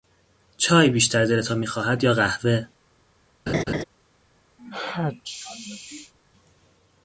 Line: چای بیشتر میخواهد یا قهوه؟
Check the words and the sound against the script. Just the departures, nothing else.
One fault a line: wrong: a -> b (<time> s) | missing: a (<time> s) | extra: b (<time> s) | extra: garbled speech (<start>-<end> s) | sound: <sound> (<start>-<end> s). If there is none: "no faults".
extra: دلتان (1.2 s)
sound: laugh (3.5-3.8 s)
sound: sneeze (4.6-6.1 s)